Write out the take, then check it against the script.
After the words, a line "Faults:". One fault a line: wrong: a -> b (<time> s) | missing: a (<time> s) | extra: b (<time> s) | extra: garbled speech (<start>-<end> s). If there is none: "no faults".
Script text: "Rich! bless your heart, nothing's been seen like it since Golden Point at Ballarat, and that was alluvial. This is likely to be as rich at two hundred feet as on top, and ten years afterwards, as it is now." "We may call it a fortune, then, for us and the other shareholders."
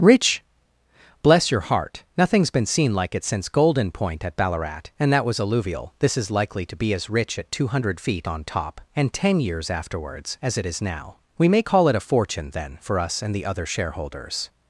"Rich! bless your heart, nothing's been seen like it since Golden Point at Ballarat, and that was alluvial. This is likely to be as rich at two hundred feet on top, and ten years afterwards, as it is now." "We may call it a fortune, then, for us and the other shareholders."
Faults:
missing: as (8.3 s)